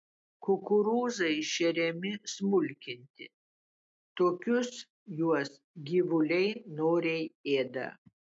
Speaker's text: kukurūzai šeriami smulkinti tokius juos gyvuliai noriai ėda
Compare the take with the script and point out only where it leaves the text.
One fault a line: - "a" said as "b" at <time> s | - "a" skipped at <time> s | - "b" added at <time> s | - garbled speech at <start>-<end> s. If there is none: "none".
none